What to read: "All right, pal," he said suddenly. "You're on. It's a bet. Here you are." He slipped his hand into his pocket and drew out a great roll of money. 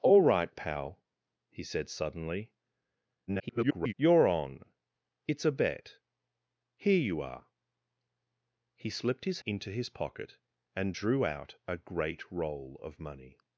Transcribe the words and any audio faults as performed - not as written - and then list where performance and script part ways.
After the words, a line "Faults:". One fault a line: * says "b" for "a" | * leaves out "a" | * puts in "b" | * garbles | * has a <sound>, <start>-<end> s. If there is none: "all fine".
"All right, pal," he said suddenly. [garbled] "You're on. It's a bet. Here you are." He slipped his into his pocket and drew out a great roll of money.
Faults:
* garbles
* leaves out "hand"